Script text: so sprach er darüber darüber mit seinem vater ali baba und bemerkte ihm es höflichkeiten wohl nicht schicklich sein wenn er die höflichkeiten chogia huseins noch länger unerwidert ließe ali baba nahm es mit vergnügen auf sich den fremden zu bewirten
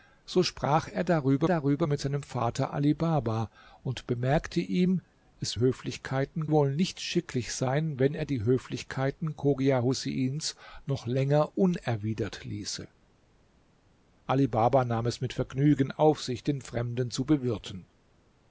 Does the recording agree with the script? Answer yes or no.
yes